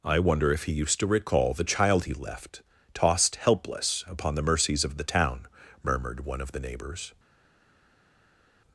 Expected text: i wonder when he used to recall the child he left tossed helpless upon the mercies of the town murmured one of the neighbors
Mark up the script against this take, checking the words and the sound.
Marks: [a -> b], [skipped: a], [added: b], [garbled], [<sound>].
i wonder [when -> if] he used to recall the child he left tossed helpless upon the mercies of the town murmured one of the neighbors